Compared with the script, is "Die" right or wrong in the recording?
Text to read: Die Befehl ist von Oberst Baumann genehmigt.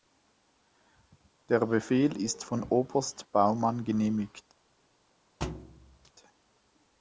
wrong